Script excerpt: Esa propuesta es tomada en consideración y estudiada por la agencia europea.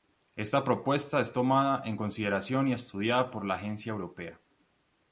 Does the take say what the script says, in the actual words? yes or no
no